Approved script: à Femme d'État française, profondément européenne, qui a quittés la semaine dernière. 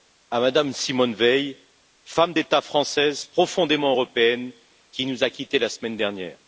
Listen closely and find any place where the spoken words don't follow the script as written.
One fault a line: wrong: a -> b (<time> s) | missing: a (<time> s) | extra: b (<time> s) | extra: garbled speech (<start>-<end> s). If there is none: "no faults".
extra: Mme Simone Veil (0.4 s)
extra: nous (5.0 s)